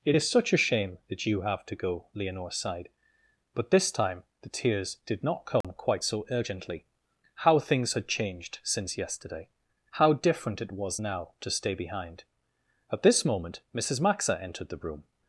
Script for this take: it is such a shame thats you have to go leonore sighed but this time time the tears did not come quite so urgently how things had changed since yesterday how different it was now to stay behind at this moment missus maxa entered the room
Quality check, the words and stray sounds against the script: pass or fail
fail